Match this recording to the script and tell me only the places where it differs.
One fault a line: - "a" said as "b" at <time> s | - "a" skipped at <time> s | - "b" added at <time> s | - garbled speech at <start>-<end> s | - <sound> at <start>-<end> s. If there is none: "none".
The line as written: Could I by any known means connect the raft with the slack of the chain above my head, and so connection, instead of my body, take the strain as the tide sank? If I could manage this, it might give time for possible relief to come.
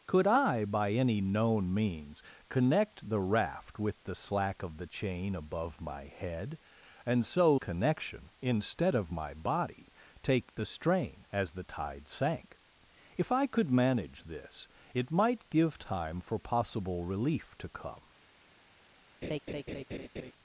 - laugh at 19.2-20.3 s